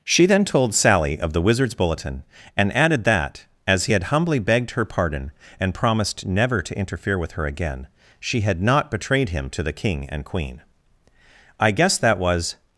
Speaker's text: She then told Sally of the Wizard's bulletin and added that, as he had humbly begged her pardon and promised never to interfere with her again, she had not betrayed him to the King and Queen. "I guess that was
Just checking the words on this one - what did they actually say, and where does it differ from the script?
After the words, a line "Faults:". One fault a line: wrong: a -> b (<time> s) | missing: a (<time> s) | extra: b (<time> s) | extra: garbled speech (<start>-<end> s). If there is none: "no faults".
She then told Sally of the Wizard's bulletin and added that, as he had humbly begged her pardon and promised never to interfere with her again, she had not betrayed him to the King and Queen. "I guess that was
Faults:
no faults